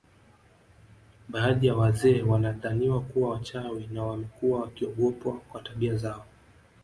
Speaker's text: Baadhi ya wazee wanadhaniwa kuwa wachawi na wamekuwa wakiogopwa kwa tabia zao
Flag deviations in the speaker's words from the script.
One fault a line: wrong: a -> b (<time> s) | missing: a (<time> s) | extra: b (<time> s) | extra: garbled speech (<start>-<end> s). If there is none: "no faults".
no faults